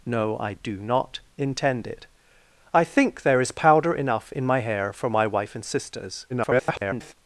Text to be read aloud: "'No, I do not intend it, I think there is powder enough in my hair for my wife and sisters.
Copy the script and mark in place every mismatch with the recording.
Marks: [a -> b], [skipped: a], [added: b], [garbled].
"'No, I do not intend it, I think there is powder enough in my hair for my wife and sisters. [garbled]